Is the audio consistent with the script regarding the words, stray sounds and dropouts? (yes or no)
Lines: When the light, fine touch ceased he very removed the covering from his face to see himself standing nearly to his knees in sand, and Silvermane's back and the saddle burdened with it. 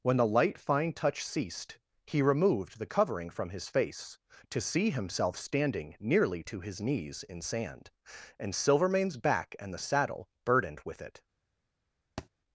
no